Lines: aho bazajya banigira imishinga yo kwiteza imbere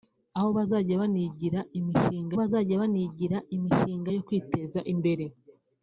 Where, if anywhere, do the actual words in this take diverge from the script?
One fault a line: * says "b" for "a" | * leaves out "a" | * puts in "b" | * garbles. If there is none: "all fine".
* puts in "bazajya banigira imishinga"